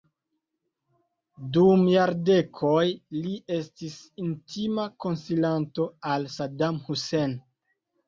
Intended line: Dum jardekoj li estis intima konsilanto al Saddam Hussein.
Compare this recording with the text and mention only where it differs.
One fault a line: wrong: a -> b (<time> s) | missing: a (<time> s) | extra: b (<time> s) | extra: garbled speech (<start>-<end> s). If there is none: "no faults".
no faults